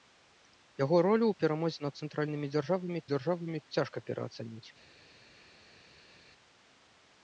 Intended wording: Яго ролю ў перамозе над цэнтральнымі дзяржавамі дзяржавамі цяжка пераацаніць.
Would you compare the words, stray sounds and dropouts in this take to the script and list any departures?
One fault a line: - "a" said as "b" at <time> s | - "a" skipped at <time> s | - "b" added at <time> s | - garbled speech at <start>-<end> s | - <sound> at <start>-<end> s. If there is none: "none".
none